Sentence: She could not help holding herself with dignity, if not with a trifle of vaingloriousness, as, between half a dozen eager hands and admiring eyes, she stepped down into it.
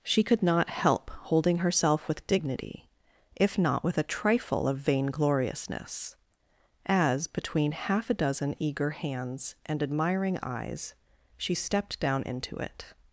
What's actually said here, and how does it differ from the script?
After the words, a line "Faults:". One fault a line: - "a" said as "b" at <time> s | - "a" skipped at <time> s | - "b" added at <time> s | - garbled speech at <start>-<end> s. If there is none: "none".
She could not help holding herself with dignity, if not with a trifle of vaingloriousness, as, between half a dozen eager hands and admiring eyes, she stepped down into it.
Faults:
none